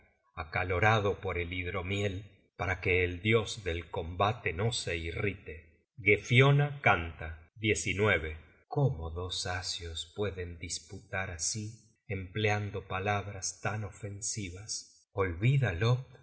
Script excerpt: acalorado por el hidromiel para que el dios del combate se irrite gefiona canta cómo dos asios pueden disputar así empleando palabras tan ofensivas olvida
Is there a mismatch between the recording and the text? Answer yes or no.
yes